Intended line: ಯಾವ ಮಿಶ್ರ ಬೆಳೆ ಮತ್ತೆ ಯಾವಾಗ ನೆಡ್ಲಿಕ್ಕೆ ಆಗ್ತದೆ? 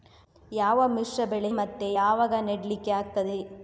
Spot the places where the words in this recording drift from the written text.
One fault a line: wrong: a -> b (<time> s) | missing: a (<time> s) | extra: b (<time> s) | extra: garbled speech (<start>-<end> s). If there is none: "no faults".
no faults